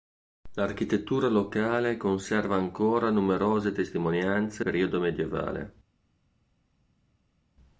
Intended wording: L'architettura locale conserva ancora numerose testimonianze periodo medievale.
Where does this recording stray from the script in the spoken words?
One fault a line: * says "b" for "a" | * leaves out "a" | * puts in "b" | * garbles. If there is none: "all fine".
all fine